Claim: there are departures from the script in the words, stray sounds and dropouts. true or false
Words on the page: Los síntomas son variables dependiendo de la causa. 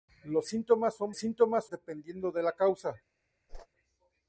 true